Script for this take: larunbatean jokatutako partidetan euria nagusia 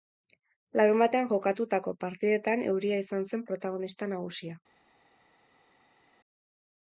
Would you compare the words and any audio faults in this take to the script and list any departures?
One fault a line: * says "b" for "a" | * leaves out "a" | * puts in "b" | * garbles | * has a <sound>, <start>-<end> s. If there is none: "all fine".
* puts in "izan zen protagonista"